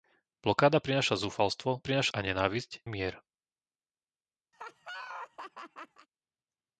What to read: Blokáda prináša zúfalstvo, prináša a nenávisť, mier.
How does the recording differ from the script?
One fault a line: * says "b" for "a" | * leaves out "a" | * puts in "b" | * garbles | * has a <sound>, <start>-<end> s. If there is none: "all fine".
* has a laugh, 4.5-6.1 s